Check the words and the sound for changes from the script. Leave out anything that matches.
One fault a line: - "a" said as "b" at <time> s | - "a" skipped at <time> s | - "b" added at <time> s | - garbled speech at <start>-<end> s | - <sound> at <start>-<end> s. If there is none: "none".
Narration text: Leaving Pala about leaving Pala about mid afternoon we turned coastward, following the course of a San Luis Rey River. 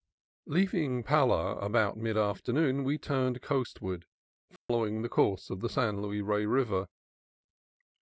- "leaving Pala about" skipped at 1.9 s
- dropout at 4.6-4.7 s
- "a" said as "the" at 5.6 s